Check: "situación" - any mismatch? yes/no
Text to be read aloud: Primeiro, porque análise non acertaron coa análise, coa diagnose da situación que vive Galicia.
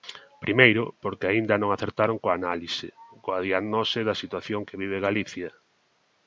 no